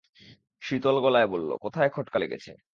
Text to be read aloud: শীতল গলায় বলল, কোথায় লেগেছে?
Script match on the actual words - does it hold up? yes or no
no